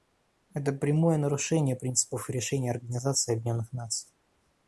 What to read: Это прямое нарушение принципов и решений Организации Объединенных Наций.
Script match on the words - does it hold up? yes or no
yes